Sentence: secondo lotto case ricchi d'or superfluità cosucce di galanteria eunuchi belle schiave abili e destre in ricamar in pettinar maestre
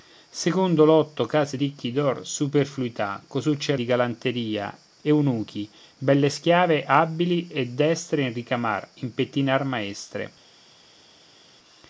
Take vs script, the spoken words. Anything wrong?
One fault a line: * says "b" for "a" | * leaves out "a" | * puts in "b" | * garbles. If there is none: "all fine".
all fine